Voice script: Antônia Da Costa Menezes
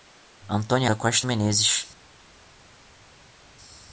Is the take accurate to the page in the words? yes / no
yes